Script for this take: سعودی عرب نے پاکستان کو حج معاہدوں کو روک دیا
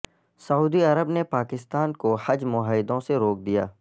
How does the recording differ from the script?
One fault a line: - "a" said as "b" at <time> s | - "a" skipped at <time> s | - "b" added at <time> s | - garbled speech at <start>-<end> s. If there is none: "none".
- "کو" said as "سے" at 3.0 s